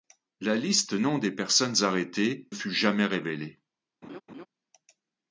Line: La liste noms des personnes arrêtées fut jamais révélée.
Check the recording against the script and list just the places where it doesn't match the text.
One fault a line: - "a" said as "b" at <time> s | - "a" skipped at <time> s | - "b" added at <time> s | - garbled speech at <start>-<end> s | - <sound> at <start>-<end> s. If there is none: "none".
- laugh at 4.0-4.5 s